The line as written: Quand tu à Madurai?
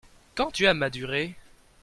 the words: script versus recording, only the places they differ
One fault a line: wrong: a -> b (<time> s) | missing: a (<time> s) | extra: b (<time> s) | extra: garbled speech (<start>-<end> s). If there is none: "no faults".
no faults